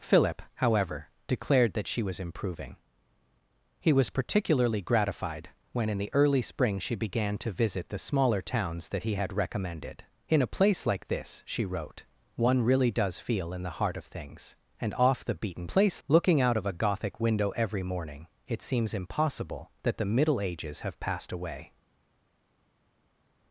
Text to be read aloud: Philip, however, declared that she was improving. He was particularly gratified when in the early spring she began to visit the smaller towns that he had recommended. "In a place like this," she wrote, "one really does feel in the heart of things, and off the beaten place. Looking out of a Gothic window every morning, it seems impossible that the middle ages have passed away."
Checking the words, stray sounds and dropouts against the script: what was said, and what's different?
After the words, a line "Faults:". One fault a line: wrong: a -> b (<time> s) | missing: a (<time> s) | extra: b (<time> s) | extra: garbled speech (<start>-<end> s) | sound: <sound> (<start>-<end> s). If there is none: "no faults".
Philip, however, declared that she was improving. He was particularly gratified when in the early spring she began to visit the smaller towns that he had recommended. "In a place like this," she wrote, "one really does feel in the heart of things, and off the beaten place. Looking out of a Gothic window every morning, it seems impossible that the middle ages have passed away."
Faults:
no faults